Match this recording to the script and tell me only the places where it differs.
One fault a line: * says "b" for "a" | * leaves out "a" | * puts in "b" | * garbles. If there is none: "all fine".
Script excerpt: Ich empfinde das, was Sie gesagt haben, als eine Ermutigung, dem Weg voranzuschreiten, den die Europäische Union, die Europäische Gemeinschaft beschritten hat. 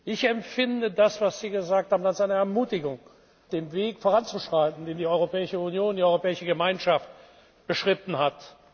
all fine